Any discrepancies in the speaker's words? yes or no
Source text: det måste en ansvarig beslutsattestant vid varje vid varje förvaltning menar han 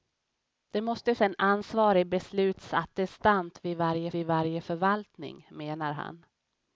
no